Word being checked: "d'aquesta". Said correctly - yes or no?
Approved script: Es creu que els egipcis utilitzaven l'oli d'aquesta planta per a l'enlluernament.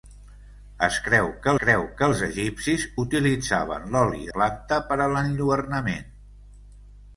no